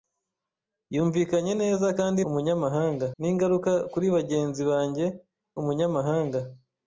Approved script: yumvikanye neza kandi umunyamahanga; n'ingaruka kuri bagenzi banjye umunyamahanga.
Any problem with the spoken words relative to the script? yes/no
no